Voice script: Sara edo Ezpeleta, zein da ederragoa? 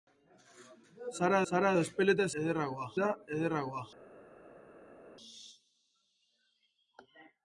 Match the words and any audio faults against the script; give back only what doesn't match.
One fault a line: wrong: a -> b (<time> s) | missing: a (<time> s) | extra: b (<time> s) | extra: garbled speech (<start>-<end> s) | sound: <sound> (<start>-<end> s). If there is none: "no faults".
extra: sara (1.5 s)
wrong: zein -> ederragoa (2.4 s)